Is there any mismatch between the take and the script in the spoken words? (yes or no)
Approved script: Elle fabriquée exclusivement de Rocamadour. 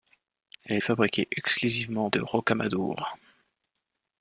no